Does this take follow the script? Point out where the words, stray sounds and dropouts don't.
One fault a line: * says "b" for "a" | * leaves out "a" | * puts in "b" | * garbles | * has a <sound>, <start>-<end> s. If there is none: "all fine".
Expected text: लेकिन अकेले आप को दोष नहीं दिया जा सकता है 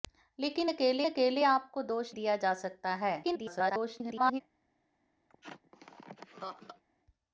* puts in "अकेले"
* leaves out "नहीं"
* garbles
* has a laugh, 5.3-6.8 s